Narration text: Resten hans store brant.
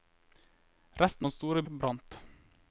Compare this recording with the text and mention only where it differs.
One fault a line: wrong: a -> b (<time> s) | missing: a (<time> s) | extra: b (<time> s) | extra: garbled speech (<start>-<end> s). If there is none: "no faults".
no faults